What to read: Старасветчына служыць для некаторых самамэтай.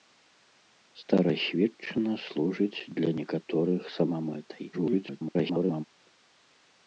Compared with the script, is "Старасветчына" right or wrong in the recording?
right